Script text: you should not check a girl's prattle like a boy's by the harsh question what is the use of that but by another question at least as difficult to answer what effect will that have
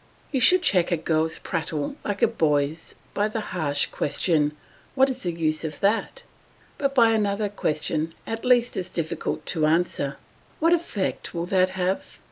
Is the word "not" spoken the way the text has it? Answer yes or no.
no